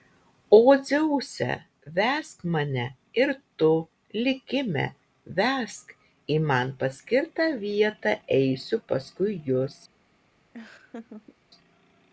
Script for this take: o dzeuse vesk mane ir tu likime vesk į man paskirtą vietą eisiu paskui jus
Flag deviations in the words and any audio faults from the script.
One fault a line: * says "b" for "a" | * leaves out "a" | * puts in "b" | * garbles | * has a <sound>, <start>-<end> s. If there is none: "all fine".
* has a laugh, 10.5-11.4 s